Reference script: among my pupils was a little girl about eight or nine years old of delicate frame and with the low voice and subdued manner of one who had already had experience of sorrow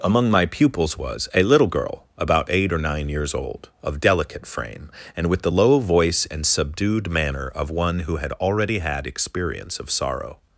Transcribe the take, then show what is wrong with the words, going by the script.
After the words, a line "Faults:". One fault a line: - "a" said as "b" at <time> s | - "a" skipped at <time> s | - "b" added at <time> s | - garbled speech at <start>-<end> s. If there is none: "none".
among my pupils was a little girl about eight or nine years old of delicate frame and with the low voice and subdued manner of one who had already had experience of sorrow
Faults:
none